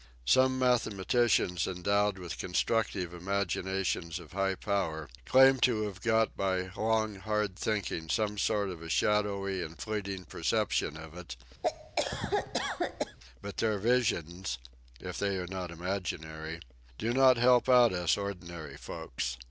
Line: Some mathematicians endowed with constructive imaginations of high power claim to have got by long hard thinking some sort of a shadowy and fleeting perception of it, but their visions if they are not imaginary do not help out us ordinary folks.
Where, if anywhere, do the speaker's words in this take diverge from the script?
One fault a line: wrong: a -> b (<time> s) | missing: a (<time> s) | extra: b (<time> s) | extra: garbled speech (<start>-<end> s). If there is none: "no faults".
no faults